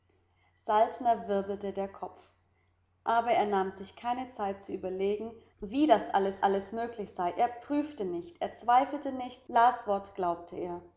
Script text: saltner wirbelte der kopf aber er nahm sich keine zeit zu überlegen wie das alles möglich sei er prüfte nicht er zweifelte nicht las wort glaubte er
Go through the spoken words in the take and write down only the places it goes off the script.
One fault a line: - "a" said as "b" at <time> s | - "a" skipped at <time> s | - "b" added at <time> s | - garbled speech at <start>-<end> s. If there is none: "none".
- "alles" added at 6.4 s